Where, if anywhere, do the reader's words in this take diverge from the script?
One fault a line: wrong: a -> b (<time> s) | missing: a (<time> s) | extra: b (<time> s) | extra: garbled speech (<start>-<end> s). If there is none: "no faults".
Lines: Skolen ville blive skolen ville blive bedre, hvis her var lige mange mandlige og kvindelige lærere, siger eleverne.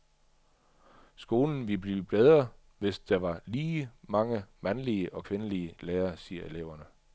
missing: skolen ville blive (2.0 s)
wrong: her -> der (3.0 s)